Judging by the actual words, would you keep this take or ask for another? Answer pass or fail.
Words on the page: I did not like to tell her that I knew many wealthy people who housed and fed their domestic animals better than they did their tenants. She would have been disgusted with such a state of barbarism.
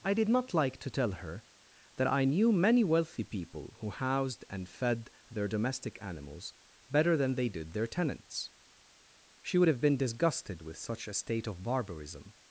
pass